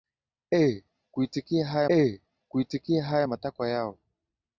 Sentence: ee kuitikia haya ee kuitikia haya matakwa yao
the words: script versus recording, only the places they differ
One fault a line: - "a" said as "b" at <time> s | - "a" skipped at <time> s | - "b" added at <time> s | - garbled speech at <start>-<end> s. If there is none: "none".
none